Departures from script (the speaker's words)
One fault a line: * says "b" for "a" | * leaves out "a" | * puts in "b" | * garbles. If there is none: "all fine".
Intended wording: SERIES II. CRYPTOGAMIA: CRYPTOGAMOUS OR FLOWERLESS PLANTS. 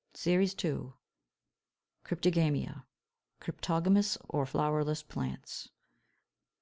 all fine